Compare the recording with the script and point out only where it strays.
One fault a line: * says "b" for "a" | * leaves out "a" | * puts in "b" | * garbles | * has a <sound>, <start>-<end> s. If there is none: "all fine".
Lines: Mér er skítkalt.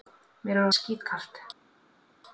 all fine